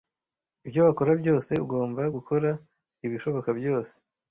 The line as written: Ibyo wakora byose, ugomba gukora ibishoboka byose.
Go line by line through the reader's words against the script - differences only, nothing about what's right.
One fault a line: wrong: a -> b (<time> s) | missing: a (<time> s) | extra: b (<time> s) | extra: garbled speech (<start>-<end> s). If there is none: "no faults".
no faults